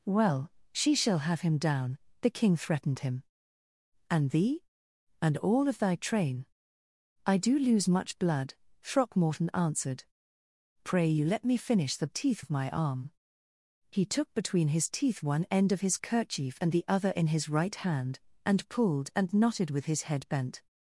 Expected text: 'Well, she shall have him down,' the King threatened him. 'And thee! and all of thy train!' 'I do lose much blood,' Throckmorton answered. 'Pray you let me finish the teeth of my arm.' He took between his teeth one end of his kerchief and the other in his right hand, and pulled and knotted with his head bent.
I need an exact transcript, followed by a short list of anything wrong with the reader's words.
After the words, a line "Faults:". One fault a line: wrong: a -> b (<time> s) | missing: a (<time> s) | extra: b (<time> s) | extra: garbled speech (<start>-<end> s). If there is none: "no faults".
'Well, she shall have him down,' the King threatened him. 'And thee! and all of thy train!' 'I do lose much blood,' Throckmorton answered. 'Pray you let me finish the teeth of my arm.' He took between his teeth one end of his kerchief and the other in his right hand, and pulled and knotted with his head bent.
Faults:
no faults